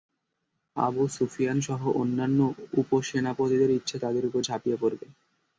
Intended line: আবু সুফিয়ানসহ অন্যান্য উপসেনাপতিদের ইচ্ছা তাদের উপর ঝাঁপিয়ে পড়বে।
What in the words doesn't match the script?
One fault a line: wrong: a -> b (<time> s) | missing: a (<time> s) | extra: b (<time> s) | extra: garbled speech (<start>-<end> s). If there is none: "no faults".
no faults